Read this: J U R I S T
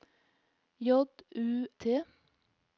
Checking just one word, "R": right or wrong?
wrong